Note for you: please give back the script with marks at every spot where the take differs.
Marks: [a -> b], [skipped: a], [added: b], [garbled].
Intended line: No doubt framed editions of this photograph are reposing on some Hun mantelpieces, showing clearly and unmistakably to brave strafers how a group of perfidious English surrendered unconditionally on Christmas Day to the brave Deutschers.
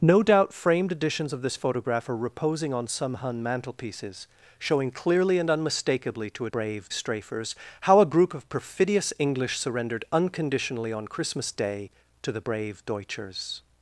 No doubt framed editions of this photograph are reposing on some Hun mantelpieces, showing clearly and unmistakably to brave strafers how a group of perfidious English surrendered unconditionally on Christmas Day to the brave Deutschers.